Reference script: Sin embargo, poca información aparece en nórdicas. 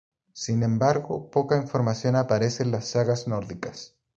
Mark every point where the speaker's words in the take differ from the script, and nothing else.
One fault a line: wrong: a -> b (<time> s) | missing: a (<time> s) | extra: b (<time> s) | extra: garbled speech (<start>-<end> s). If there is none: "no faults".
extra: las sagas (2.7 s)